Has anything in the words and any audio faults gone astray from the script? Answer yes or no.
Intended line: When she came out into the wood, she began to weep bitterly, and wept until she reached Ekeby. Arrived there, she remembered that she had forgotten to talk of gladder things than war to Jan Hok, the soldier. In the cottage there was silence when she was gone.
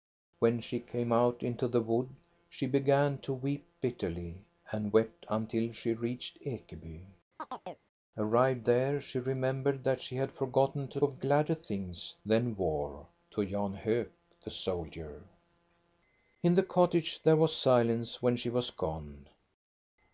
yes